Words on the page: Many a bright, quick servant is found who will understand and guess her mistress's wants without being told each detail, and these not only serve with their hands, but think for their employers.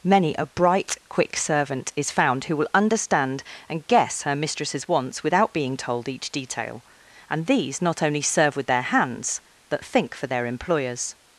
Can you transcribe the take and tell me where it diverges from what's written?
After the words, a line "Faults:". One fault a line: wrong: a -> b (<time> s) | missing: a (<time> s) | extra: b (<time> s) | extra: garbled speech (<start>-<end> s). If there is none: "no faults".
Many a bright, quick servant is found who will understand and guess her mistress's wants without being told each detail, and these not only serve with their hands, but think for their employers.
Faults:
no faults